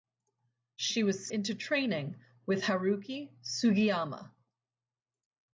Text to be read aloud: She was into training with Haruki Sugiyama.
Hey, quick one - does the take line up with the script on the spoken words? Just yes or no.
yes